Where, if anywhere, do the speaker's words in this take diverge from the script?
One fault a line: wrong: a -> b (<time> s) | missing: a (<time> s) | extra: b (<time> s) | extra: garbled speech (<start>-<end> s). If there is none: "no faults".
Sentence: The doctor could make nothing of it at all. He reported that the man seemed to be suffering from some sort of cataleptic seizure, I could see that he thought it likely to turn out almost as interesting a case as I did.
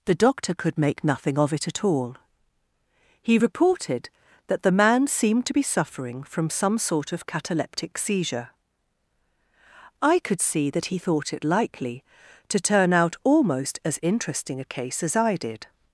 no faults